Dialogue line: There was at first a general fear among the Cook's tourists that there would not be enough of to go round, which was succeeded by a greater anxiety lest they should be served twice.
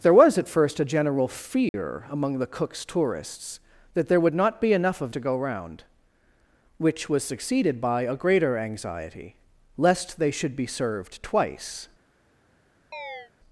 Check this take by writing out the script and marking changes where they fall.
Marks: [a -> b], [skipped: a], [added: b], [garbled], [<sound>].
There was at first a general fear [dropout] among the Cook's tourists that there would not be enough of to go round, which was succeeded by a greater anxiety lest they should be served twice. [chirp]